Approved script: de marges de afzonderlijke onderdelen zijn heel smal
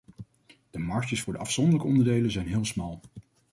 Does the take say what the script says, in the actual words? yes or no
no